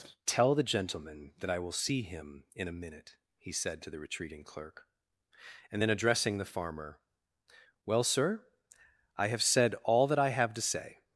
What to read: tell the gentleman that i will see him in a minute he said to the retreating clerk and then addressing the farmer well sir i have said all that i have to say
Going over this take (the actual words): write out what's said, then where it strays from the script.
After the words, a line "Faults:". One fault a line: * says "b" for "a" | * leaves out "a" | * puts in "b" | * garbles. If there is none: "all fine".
tell the gentleman that i will see him in a minute he said to the retreating clerk and then addressing the farmer well sir i have said all that i have to say
Faults:
all fine